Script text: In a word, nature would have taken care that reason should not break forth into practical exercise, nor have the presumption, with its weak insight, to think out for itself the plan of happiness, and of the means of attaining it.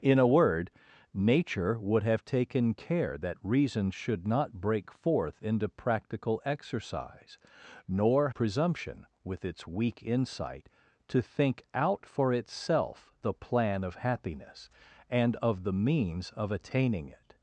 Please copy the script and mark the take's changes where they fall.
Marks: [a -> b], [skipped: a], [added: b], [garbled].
In a word, nature would have taken care that reason should not break forth into practical exercise, nor [skipped: have the] presumption, with its weak insight, to think out for itself the plan of happiness, and of the means of attaining it.